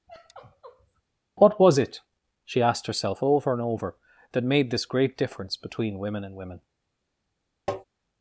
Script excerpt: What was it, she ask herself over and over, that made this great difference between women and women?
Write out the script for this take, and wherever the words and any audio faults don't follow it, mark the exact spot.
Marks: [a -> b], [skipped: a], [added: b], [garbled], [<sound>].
[sigh] What was it, she [ask -> asked] herself over and over, that made this great difference between women and women? [tap]